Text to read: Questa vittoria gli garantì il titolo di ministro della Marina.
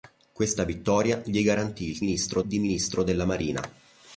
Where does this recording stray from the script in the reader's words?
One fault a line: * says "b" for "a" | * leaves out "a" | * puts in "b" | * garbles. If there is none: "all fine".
* says "ministro" for "titolo"